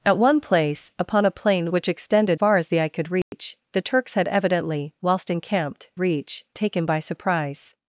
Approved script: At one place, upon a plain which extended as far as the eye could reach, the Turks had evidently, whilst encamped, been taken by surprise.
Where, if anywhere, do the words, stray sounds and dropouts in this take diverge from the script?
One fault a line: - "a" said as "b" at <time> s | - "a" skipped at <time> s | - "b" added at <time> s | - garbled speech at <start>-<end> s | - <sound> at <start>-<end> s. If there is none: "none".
- "as" skipped at 2.4 s
- dropout at 3.2-3.3 s
- "been" said as "reach" at 6.0 s